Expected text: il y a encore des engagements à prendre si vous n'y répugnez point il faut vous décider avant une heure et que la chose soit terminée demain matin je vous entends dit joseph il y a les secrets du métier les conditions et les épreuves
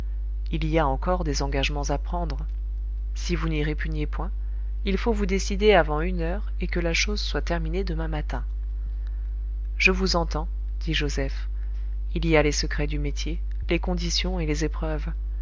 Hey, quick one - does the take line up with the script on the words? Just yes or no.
yes